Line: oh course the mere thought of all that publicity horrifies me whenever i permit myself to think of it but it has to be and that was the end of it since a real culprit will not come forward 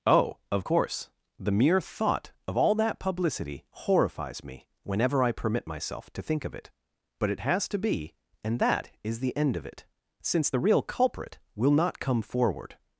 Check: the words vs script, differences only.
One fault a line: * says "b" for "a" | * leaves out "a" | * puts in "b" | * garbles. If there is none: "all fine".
* puts in "of"
* says "is" for "was"
* says "the" for "a"